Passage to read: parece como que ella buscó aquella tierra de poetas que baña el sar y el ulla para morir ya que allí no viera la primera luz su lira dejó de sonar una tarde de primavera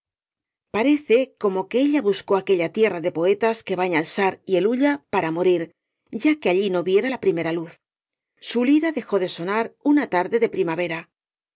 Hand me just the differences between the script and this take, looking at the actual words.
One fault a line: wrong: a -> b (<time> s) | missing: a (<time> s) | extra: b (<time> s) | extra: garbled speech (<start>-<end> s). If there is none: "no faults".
no faults